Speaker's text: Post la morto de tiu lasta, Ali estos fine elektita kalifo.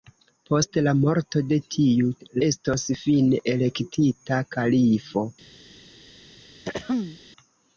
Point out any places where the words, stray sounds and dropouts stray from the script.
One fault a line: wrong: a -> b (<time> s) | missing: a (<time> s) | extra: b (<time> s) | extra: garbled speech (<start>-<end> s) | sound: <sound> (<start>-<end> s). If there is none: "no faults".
missing: lasta Ali (2.1 s)
sound: throat clearing (6.6-7.2 s)